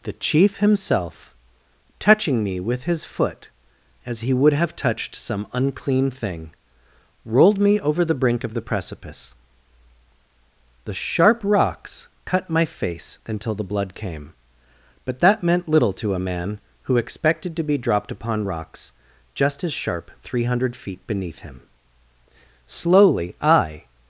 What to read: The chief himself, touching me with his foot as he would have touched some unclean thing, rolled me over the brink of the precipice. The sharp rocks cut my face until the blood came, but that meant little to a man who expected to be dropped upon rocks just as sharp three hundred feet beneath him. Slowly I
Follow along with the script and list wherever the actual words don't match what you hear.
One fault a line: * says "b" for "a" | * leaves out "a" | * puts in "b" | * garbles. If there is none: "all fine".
all fine